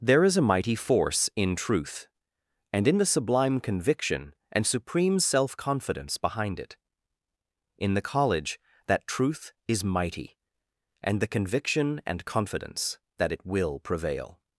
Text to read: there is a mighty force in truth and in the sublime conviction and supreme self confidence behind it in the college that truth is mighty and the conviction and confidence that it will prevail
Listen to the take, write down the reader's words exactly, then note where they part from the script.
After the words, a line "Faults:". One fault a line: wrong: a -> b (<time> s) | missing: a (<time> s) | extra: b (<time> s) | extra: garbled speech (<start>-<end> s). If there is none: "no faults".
there is a mighty force in truth and in the sublime conviction and supreme self confidence behind it in the college that truth is mighty and the conviction and confidence that it will prevail
Faults:
no faults